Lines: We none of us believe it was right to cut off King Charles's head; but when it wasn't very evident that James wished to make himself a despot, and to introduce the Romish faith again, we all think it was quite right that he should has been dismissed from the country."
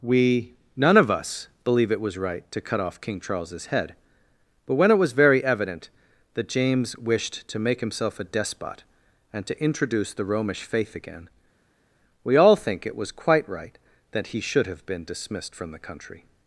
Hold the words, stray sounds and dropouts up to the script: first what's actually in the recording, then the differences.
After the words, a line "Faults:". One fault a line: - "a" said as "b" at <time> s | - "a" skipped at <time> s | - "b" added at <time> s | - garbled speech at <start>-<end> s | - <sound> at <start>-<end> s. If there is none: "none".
We none of us believe it was right to cut off King Charles's head; but when it was very evident that James wished to make himself a despot, and to introduce the Romish faith again, we all think it was quite right that he should have been dismissed from the country."
Faults:
- "wasn't" said as "was" at 5.0 s
- "has" said as "have" at 14.7 s